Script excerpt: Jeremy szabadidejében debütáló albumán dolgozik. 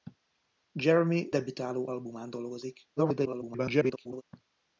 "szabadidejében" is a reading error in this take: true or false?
true